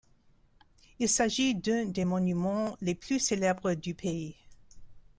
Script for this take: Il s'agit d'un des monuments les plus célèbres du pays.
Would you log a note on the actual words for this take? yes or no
no